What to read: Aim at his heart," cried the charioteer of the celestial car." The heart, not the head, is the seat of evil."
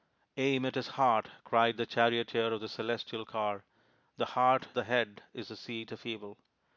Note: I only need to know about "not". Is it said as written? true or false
false